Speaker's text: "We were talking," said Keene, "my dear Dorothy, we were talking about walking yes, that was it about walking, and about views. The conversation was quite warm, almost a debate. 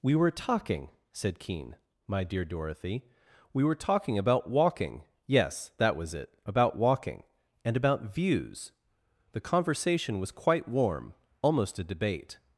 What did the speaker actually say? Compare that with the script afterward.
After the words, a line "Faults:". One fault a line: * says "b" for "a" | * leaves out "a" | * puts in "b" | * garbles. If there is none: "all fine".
"We were talking," said Keene, "my dear Dorothy, we were talking about walking yes, that was it about walking, and about views. The conversation was quite warm, almost a debate.
Faults:
all fine